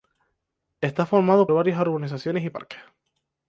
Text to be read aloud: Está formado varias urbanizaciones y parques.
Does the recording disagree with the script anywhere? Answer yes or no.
no